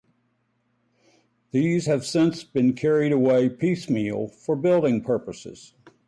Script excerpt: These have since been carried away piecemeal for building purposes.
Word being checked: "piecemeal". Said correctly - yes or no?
yes